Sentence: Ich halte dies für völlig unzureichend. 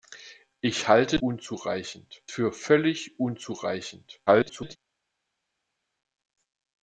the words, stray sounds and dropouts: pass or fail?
fail